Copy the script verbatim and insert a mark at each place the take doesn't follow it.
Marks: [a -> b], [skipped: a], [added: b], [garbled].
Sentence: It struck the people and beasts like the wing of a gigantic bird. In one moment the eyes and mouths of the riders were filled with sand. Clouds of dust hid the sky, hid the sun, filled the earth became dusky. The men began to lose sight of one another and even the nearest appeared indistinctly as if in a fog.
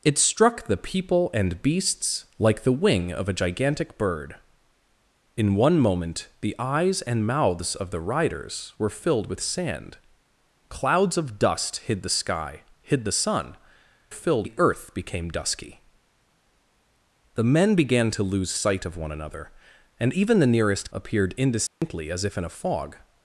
It struck the people and beasts like the wing of a gigantic bird. In one moment the eyes and mouths of the riders were filled with sand. Clouds of dust hid the sky, hid the sun, filled the earth became dusky. The men began to lose sight of one another and even the nearest appeared indistinctly as if in a fog.